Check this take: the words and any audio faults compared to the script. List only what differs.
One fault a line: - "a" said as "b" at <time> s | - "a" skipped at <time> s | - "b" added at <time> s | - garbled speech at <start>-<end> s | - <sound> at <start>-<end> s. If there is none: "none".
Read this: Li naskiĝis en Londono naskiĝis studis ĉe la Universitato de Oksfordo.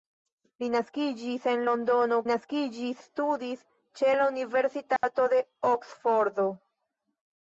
- dropout at 5.0-5.0 s